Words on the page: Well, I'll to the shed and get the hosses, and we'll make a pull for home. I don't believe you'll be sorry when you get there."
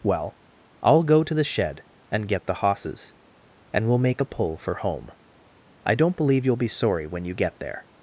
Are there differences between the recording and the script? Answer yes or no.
yes